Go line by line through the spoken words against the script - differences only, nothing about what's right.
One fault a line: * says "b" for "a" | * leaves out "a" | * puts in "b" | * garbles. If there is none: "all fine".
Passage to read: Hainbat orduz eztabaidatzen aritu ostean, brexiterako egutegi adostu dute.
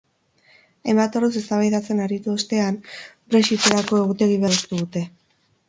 all fine